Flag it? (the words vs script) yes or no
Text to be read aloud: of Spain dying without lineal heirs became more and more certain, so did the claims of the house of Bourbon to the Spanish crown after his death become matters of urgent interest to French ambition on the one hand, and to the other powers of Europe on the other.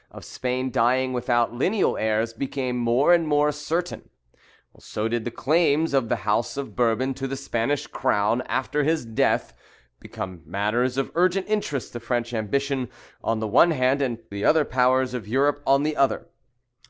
yes